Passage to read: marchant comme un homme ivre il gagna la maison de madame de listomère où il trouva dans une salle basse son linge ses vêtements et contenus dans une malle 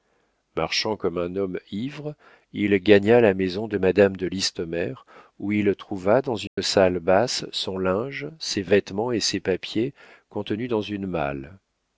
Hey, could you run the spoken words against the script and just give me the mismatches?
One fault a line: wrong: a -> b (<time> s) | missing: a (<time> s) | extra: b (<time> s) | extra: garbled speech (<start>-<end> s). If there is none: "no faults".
extra: ses papiers (9.2 s)